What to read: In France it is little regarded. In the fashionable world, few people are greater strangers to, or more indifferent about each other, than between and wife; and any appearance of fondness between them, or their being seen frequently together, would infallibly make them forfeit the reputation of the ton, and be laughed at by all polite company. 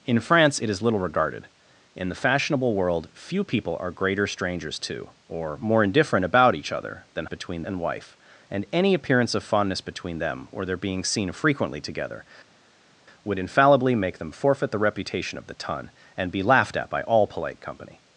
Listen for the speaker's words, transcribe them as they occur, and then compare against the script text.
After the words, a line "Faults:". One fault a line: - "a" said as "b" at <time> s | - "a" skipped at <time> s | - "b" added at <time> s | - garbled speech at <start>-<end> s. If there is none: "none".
In France it is little regarded. In the fashionable world, few people are greater strangers to, or more indifferent about each other, than between and wife; and any appearance of fondness between them, or their being seen frequently together, would infallibly make them forfeit the reputation of the ton, and be laughed at by all polite company.
Faults:
none